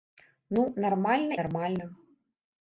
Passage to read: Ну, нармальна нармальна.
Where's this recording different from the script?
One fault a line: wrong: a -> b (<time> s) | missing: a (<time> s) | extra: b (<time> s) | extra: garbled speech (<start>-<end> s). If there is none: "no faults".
no faults